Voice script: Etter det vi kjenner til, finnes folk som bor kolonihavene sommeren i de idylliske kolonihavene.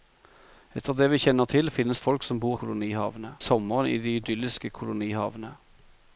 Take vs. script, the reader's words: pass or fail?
pass